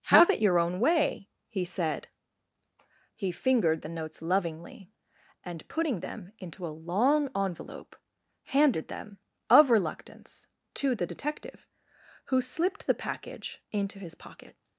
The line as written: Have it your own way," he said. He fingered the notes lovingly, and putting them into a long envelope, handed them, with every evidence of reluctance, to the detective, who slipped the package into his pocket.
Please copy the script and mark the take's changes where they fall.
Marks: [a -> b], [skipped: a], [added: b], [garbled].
Have it your own way," he said. He fingered the notes lovingly, and putting them into a long envelope, handed them, [skipped: with every evidence] of reluctance, to the detective, who slipped the package into his pocket.